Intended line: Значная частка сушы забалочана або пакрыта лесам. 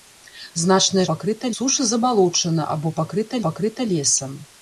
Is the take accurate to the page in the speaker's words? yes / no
no